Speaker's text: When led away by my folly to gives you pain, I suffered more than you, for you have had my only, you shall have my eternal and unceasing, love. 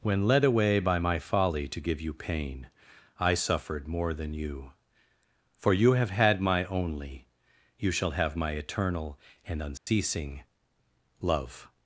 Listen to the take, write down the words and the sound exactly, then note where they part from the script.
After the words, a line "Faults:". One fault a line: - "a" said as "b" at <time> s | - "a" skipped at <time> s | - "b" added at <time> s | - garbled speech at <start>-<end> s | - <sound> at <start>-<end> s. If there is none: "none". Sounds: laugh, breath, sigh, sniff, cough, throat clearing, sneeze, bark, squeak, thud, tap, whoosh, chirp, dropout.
When led away by my folly to give you pain, I suffered more than you, for you have had my only, you shall have my eternal and unceasing, love.
Faults:
- "gives" said as "give" at 1.8 s
- dropout at 9.8-9.9 s